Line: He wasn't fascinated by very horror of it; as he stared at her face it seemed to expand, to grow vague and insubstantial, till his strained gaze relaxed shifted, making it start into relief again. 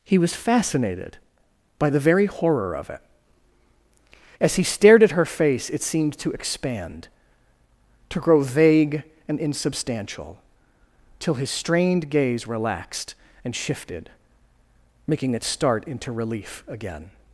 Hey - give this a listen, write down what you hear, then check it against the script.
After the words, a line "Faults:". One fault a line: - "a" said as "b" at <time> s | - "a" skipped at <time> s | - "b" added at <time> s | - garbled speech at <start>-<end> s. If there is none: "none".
He was fascinated by the very horror of it; as he stared at her face it seemed to expand, to grow vague and insubstantial, till his strained gaze relaxed and shifted, making it start into relief again.
Faults:
- "wasn't" said as "was" at 0.2 s
- "the" added at 1.9 s
- "and" added at 13.4 s